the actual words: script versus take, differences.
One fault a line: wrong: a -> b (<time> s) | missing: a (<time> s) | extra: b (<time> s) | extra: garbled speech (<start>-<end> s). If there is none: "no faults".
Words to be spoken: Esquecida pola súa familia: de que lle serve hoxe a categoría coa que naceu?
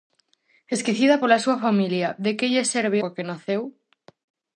missing: hoxe a categoría (3.0 s)